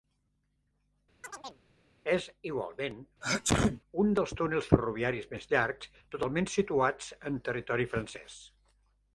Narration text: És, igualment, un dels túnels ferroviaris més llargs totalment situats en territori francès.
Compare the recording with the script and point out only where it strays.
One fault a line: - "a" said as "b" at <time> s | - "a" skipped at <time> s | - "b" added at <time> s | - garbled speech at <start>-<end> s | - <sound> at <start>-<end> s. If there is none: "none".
- chirp at 1.2-1.6 s
- sneeze at 3.2-3.8 s